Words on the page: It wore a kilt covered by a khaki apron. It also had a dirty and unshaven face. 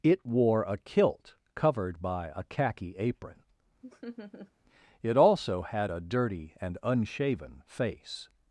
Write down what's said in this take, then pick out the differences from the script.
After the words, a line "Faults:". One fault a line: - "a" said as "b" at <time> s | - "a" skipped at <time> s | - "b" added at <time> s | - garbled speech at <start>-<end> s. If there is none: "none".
It wore a kilt covered by a khaki apron. It also had a dirty and unshaven face.
Faults:
none